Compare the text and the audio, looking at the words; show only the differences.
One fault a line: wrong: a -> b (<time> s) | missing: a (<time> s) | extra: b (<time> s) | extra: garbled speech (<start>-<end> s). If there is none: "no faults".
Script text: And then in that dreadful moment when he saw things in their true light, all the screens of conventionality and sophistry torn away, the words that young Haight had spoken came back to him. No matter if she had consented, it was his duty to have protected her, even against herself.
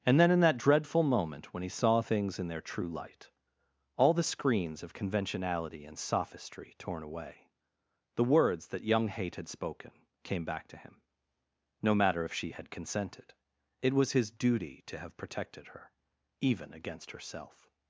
no faults